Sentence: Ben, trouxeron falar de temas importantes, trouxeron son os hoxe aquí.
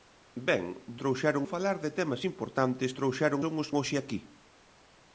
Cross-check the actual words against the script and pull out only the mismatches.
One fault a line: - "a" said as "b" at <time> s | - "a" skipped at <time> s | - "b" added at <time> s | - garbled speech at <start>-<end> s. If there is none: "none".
none